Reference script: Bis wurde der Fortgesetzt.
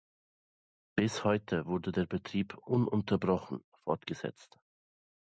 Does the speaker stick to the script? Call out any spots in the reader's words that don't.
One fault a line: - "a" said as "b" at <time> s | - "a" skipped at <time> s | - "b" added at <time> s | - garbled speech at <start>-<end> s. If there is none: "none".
- "heute" added at 1.2 s
- "Betrieb ununterbrochen" added at 2.0 s